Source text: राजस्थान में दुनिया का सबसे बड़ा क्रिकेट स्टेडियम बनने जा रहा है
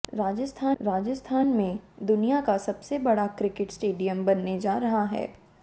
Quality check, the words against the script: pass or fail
fail